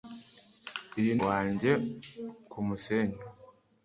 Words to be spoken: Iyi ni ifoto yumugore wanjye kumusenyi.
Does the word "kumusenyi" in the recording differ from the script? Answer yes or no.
no